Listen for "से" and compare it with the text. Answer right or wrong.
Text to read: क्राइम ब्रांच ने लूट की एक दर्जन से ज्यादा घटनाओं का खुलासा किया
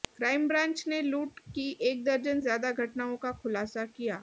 wrong